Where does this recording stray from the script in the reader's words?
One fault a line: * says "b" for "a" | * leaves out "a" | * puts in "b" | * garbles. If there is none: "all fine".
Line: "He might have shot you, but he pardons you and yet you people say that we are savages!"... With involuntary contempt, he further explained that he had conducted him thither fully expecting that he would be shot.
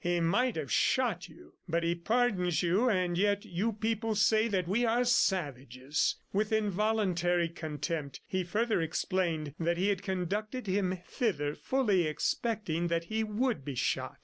all fine